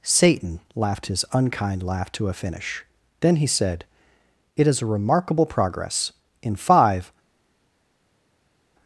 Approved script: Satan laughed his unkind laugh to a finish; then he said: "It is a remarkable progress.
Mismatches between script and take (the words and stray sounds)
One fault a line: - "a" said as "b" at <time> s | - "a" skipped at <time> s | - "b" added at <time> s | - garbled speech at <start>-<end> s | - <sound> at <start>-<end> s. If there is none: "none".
- "In five" added at 6.4 s